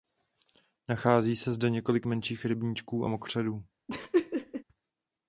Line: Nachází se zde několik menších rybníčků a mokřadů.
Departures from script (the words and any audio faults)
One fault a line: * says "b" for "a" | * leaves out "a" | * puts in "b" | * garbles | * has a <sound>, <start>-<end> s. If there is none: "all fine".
* has a laugh, 3.9-4.6 s